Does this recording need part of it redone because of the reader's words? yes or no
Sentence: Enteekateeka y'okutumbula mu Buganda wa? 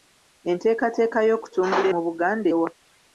no